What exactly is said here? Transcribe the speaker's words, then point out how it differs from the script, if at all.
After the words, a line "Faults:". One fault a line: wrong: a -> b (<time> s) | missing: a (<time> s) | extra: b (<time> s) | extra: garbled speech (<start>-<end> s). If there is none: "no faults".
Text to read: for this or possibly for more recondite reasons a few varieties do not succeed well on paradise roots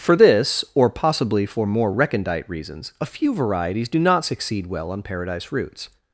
for this or possibly for more recondite reasons a few varieties do not succeed well on paradise roots
Faults:
no faults